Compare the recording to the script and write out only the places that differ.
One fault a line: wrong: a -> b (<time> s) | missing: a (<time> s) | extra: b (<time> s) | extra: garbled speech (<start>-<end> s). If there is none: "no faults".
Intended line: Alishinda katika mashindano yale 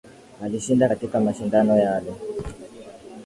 no faults